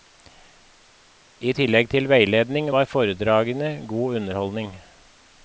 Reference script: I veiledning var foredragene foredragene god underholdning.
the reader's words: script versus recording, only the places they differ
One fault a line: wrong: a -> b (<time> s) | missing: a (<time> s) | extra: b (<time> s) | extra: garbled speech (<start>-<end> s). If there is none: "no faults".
extra: tillegg til (1.6 s)
missing: foredragene (3.7 s)